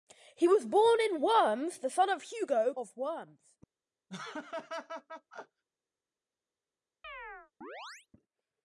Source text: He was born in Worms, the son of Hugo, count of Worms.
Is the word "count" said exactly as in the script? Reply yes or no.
no